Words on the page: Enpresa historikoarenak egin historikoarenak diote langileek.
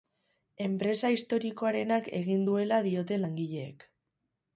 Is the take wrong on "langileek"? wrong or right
right